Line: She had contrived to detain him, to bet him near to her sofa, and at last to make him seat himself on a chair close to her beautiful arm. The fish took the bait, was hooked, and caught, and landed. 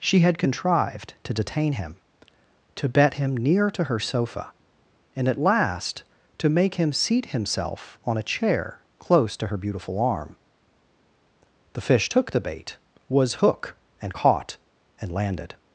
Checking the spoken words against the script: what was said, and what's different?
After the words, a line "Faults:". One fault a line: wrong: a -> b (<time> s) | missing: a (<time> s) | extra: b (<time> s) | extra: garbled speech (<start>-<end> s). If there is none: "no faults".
She had contrived to detain him, to bet him near to her sofa, and at last to make him seat himself on a chair close to her beautiful arm. The fish took the bait, was hook, and caught, and landed.
Faults:
wrong: hooked -> hook (13.3 s)